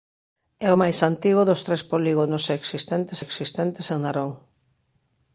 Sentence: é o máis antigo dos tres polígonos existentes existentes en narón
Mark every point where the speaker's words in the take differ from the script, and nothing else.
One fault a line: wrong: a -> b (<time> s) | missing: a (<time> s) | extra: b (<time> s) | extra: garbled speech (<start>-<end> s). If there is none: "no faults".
no faults